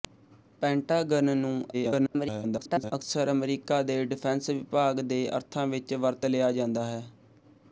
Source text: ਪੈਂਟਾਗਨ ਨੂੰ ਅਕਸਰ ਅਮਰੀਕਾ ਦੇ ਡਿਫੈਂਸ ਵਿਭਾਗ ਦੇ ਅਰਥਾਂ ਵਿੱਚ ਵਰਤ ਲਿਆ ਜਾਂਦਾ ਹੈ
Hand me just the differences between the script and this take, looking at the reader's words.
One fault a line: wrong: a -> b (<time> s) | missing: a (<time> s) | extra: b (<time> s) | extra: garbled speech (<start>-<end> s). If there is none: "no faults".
extra: garbled speech (1.7-2.9 s)